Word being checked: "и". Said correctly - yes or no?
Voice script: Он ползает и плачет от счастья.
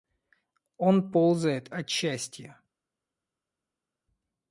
no